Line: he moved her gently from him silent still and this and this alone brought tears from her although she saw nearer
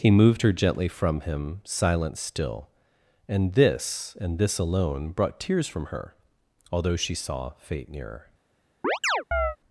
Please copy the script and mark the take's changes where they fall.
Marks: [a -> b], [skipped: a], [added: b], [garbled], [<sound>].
he moved her gently from him silent still and this and this alone brought tears from her although she saw [added: fate] nearer [chirp]